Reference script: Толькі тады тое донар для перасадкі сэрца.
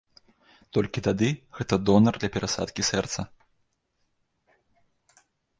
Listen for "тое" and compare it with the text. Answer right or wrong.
wrong